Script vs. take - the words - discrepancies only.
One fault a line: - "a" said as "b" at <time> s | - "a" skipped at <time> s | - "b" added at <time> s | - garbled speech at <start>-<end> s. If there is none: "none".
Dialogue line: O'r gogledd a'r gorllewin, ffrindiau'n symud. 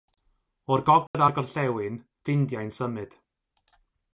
none